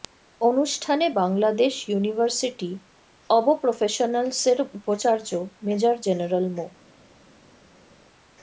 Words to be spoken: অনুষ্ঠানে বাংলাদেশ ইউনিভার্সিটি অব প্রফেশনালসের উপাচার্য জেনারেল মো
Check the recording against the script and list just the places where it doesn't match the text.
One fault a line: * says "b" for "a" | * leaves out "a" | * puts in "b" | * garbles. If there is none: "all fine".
* puts in "মেজর"